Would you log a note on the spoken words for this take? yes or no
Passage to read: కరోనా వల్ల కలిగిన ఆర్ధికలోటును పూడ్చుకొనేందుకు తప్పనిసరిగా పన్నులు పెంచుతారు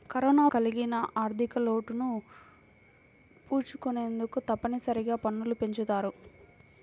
yes